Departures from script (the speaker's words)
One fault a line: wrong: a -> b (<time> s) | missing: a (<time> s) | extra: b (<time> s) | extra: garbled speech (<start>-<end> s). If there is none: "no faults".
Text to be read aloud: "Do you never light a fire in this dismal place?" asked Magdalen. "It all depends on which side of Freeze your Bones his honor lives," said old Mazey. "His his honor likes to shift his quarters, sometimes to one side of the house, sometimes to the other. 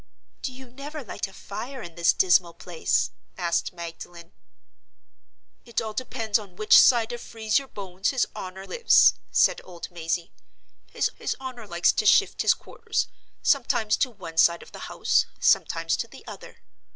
no faults